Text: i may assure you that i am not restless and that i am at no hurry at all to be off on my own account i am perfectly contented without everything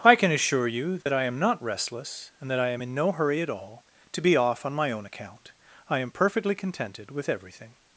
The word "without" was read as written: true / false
false